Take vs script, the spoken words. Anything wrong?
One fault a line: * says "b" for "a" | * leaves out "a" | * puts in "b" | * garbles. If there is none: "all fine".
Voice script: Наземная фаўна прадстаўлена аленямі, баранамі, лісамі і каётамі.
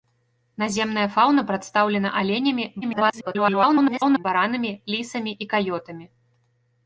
* garbles